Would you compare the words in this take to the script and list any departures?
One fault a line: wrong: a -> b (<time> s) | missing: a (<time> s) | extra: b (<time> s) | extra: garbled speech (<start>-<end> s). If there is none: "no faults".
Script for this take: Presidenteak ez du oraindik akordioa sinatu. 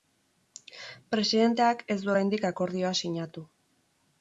no faults